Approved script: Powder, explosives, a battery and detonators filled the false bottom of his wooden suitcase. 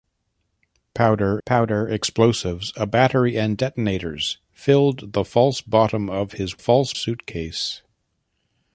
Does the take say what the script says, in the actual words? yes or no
no